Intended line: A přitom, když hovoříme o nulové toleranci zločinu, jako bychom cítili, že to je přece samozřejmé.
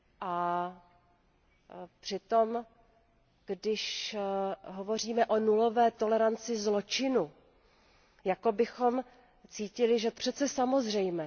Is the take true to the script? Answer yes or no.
no